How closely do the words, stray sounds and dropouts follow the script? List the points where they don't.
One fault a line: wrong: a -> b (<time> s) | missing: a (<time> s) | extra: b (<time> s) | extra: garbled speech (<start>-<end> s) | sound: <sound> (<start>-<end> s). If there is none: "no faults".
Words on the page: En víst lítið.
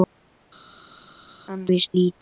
no faults